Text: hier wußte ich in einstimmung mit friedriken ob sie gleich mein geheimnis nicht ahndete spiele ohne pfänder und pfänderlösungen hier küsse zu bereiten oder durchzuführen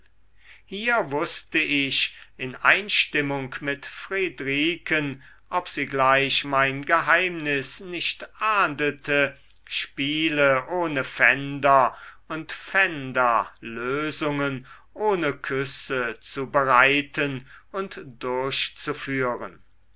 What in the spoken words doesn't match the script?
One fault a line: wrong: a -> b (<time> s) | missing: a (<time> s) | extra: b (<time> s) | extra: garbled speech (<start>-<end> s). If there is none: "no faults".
wrong: hier -> ohne (14.9 s)
wrong: oder -> und (17.7 s)